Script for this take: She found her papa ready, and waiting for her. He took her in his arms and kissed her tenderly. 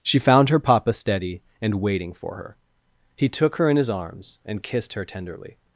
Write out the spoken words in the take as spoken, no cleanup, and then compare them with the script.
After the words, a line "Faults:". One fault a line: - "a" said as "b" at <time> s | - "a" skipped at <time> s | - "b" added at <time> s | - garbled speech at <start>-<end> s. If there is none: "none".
She found her papa steady, and waiting for her. He took her in his arms and kissed her tenderly.
Faults:
- "ready" said as "steady" at 0.9 s